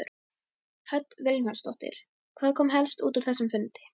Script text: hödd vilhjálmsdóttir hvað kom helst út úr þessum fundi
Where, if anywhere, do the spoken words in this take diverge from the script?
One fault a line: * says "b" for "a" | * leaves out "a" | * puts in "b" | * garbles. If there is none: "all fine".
all fine